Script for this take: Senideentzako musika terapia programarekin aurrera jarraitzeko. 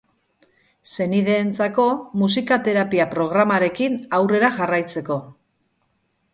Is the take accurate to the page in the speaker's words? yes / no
yes